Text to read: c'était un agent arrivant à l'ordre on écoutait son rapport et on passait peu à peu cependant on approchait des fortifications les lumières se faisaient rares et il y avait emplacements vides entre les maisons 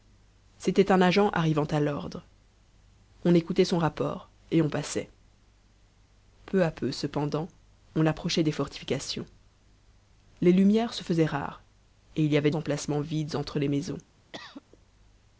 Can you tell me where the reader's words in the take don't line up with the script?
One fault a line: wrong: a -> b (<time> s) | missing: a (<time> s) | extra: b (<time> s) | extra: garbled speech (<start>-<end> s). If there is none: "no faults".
no faults